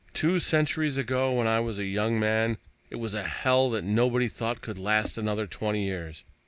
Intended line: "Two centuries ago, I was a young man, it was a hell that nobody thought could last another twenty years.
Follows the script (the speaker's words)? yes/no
no